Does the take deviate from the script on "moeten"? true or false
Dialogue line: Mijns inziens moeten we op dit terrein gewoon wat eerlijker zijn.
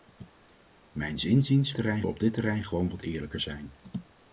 true